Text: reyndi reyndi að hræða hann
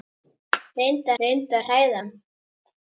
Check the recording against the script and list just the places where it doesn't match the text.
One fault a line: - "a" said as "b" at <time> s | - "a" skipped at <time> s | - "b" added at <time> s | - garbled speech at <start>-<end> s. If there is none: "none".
none